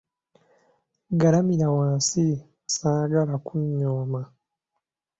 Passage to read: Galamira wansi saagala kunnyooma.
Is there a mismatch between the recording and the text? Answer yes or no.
no